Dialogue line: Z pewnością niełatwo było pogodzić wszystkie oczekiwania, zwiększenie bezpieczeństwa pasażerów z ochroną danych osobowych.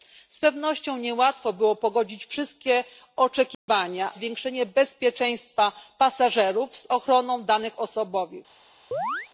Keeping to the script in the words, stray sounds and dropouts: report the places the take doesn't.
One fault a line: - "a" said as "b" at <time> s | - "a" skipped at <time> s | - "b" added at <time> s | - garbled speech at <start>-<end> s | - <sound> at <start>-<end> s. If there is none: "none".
- dropout at 3.5-3.7 s
- chirp at 8.9-9.3 s